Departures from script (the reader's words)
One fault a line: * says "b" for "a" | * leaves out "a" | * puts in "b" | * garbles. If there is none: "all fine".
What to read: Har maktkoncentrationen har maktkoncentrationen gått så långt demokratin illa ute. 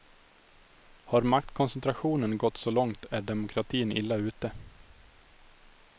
* leaves out "har maktkoncentrationen"
* puts in "är"